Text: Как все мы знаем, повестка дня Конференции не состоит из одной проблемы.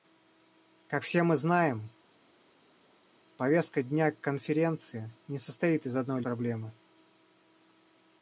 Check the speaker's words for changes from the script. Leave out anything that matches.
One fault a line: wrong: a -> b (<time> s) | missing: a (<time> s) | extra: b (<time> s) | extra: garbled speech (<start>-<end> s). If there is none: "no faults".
no faults